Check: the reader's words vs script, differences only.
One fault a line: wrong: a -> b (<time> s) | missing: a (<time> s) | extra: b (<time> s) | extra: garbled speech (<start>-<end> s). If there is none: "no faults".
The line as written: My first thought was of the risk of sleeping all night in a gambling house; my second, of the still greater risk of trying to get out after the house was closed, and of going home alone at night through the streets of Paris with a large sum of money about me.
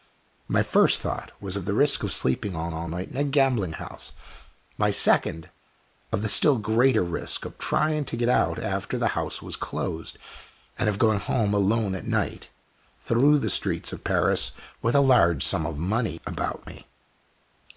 extra: all (2.7 s)